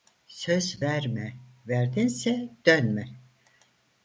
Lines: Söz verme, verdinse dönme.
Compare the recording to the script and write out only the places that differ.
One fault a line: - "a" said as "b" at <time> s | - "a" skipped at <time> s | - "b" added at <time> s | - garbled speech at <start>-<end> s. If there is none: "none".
none